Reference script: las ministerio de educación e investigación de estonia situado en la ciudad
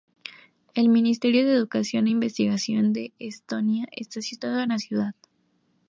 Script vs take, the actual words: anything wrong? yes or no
yes